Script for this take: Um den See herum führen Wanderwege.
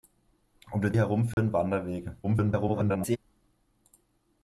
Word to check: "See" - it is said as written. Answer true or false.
false